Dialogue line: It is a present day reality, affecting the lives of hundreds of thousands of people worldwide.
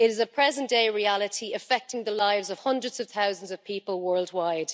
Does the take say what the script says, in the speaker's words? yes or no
yes